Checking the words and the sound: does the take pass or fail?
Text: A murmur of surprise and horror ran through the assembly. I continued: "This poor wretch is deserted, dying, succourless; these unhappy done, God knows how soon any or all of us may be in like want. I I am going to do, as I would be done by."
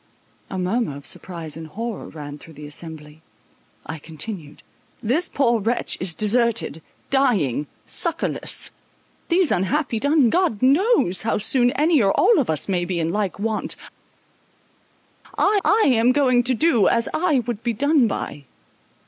pass